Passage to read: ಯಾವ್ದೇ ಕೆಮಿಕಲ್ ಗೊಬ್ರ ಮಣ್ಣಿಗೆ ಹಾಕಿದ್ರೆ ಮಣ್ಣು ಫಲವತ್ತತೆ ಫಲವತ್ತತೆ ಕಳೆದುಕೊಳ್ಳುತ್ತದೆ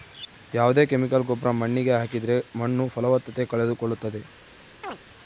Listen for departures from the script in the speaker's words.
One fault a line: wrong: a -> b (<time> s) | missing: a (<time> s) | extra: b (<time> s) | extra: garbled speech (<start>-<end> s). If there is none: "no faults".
missing: ಫಲವತ್ತತೆ (3.5 s)